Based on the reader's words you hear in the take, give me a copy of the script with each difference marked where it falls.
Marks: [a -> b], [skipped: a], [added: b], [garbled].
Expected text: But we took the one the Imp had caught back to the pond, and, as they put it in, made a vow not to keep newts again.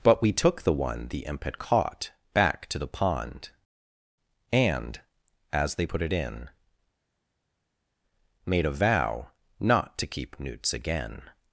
But we took the one the Imp had caught back to the pond, and, as they put it in, made a vow not to keep newts again.